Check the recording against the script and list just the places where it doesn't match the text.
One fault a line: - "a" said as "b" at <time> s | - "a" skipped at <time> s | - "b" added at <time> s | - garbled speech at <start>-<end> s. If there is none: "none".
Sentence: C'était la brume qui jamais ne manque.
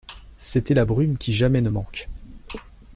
none